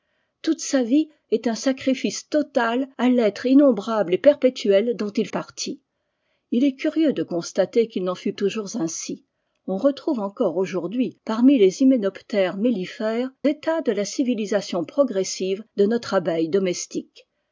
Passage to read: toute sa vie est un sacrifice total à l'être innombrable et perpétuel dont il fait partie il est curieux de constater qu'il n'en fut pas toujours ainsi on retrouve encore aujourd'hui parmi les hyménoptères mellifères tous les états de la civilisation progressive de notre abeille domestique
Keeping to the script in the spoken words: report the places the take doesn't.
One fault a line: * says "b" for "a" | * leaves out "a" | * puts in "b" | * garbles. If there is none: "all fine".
* leaves out "fait"
* leaves out "pas"
* leaves out "tous les"